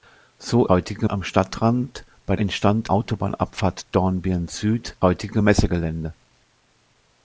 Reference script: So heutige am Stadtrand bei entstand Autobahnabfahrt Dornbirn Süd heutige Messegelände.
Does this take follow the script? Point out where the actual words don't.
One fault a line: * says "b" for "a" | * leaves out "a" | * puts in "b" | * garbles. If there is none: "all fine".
all fine